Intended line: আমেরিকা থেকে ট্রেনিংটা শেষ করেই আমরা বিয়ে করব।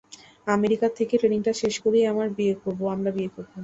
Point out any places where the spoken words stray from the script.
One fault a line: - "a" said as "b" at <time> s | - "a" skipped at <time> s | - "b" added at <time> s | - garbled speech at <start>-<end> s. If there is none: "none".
none